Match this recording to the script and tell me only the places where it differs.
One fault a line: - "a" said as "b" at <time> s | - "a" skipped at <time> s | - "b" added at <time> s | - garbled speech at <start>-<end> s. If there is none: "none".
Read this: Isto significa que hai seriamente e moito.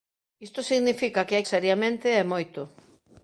none